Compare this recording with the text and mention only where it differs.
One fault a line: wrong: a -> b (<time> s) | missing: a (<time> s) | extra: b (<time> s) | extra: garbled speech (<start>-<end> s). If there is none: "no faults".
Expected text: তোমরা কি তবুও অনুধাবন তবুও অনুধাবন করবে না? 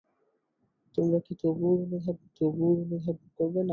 no faults